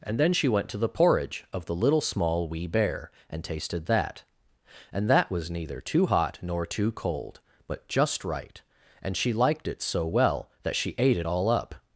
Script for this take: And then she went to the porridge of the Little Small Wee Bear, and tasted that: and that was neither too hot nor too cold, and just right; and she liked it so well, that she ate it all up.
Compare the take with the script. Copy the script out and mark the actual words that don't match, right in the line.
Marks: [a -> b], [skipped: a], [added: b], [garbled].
And then she went to the porridge of the Little Small Wee Bear, and tasted that: and that was neither too hot nor too cold, [and -> but] just right; and she liked it so well, that she ate it all up.